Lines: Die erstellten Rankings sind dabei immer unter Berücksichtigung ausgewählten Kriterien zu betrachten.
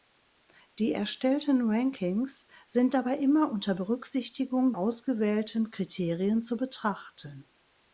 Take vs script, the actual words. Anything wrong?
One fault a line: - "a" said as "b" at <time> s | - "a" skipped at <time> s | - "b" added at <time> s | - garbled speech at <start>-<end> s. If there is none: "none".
none